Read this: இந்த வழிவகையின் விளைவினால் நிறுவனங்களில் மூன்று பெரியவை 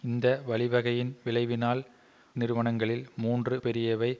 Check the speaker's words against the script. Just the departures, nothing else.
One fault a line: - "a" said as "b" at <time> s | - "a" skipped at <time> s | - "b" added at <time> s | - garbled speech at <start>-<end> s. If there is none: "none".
none